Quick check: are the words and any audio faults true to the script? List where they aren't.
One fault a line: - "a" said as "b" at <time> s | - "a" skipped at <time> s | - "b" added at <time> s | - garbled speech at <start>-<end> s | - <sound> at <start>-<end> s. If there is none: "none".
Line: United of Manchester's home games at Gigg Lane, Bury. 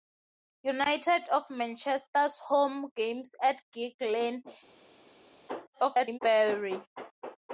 - garbled speech at 5.7-6.2 s